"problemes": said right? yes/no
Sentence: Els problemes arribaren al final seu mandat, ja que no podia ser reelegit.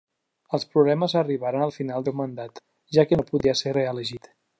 yes